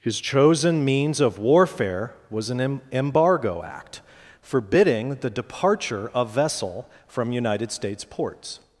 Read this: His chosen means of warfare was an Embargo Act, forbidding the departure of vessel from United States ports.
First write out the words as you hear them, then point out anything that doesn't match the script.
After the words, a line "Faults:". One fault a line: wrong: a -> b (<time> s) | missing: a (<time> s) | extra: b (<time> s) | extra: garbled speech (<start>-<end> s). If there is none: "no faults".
His chosen means of warfare was an Embargo Act, forbidding the departure of vessel from United States ports.
Faults:
no faults